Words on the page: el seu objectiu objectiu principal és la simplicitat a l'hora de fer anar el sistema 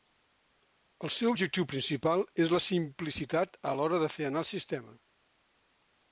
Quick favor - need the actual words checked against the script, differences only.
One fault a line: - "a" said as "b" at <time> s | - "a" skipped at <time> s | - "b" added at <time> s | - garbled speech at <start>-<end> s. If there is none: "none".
- "objectiu" skipped at 1.7 s